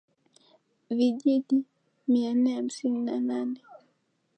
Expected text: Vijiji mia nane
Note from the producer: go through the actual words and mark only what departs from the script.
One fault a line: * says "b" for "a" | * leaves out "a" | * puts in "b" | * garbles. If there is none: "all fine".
* puts in "nne hamsini na"